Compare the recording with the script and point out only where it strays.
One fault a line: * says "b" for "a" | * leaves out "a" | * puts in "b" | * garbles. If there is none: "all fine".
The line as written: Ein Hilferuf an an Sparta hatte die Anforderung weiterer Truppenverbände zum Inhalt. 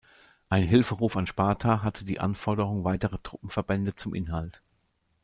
* leaves out "an"